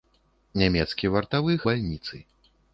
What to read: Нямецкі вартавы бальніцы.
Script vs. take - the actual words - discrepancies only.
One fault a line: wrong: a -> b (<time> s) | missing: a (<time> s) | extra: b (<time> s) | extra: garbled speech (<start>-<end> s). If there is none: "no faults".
no faults